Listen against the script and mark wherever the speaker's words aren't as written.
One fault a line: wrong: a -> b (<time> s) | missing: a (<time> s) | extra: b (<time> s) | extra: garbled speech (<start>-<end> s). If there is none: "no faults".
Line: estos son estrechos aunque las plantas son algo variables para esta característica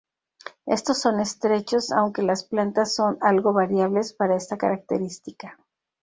no faults